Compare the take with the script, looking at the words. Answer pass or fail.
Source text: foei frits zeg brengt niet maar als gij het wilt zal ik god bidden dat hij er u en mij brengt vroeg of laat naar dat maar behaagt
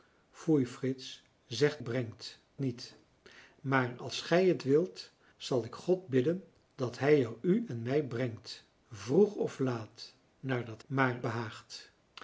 pass